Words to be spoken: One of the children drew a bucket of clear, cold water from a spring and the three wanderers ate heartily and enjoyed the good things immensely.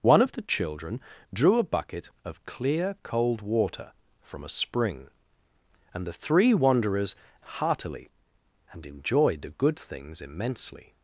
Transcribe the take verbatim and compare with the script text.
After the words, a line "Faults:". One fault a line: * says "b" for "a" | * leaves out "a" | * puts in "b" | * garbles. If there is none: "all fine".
One of the children drew a bucket of clear, cold water from a spring and the three wanderers heartily and enjoyed the good things immensely.
Faults:
* leaves out "ate"